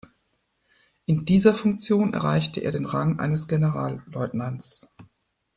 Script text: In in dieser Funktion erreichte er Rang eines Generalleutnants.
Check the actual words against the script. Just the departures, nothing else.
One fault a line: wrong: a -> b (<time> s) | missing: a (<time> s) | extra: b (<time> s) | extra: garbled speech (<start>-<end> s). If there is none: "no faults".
missing: in (1.2 s)
extra: den (2.7 s)